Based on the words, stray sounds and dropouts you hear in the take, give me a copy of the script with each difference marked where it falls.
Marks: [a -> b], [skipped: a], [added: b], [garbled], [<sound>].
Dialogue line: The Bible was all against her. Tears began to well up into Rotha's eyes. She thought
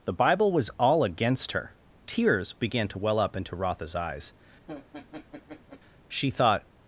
The Bible was all against her. Tears began to well up into Rotha's eyes. [laugh] She thought